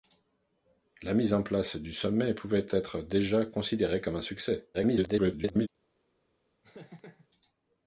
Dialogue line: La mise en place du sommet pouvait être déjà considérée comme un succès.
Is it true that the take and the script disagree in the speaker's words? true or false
true